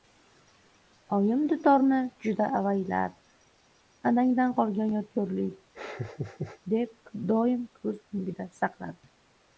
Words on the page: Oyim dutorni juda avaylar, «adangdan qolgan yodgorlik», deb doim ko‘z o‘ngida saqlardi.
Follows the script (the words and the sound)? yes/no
no